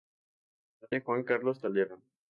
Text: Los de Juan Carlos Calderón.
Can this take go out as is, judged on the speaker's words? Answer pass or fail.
pass